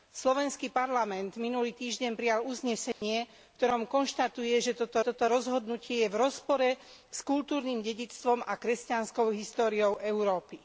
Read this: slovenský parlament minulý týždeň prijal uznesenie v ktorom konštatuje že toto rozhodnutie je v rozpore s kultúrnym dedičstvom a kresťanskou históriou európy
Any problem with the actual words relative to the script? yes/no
yes